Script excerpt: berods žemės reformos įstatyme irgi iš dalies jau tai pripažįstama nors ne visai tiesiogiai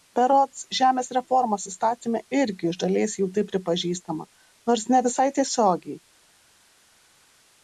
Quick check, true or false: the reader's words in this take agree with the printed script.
true